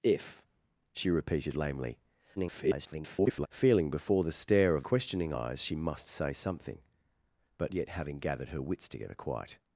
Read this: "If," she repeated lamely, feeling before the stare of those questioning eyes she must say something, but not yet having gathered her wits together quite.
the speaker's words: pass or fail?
fail